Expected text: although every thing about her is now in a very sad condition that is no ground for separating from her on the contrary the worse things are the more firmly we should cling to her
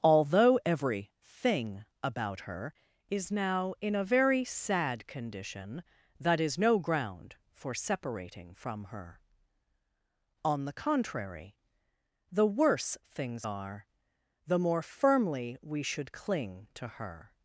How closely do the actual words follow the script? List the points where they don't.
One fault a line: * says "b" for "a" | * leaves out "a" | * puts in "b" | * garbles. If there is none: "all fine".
all fine